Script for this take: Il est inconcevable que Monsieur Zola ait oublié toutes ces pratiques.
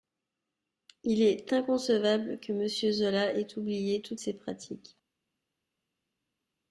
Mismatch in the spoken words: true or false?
false